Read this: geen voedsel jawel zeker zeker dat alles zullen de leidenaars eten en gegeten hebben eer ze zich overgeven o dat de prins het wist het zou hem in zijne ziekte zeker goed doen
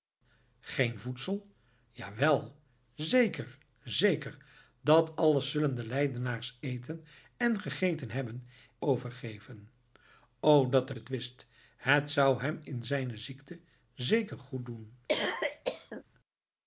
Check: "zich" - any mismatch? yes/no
yes